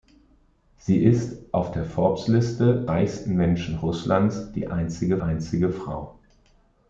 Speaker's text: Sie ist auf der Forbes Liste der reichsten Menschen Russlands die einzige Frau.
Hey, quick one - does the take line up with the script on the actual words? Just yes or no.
no